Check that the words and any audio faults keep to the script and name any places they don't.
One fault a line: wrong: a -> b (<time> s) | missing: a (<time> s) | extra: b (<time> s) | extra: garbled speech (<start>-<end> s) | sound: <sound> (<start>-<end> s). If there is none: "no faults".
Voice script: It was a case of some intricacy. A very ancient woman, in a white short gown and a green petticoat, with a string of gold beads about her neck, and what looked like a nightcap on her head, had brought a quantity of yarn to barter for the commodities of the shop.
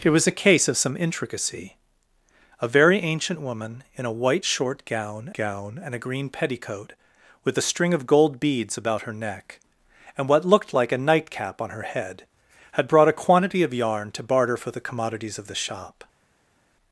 extra: gown (5.3 s)